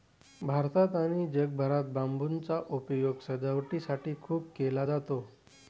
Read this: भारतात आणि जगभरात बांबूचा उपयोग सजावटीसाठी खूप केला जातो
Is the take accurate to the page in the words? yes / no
yes